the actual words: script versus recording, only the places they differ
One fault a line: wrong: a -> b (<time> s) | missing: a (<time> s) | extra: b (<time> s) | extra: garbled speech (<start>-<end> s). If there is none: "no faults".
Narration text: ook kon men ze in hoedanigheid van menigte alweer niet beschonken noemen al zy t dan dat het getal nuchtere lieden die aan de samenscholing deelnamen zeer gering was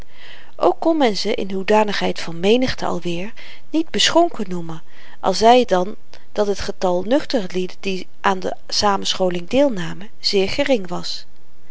no faults